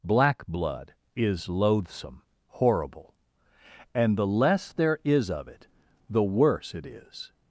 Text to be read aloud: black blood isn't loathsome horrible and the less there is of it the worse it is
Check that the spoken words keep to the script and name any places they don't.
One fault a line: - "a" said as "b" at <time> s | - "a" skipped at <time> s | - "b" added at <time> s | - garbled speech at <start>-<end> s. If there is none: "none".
- "isn't" said as "is" at 1.1 s